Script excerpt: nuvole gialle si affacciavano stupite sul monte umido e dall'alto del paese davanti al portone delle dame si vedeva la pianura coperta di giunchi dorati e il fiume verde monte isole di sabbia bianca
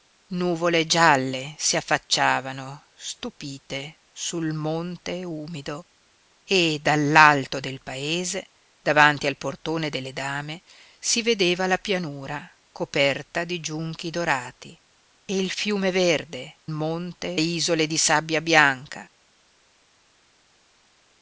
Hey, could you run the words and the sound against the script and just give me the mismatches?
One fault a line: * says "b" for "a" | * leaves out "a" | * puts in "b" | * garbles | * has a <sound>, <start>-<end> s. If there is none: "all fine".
all fine